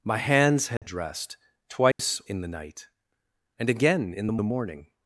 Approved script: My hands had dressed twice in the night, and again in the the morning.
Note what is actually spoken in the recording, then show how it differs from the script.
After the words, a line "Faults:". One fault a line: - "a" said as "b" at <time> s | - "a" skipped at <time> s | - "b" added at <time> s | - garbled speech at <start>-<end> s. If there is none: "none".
My hands had dressed twice in the night, and again in the the morning.
Faults:
none